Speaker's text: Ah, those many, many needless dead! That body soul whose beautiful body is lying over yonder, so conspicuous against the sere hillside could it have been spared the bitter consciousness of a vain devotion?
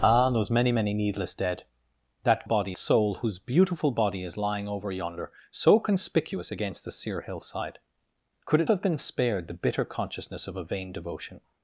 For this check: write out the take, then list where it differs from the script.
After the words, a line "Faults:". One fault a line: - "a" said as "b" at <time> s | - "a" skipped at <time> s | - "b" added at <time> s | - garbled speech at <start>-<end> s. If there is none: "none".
Ah, those many, many needless dead! That body soul whose beautiful body is lying over yonder, so conspicuous against the sere hillside could it have been spared the bitter consciousness of a vain devotion?
Faults:
none